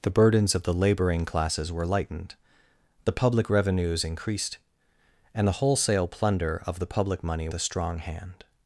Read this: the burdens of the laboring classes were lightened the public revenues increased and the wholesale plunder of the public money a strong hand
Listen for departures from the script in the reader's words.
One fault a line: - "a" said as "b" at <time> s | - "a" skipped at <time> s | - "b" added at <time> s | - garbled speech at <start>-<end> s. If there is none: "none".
none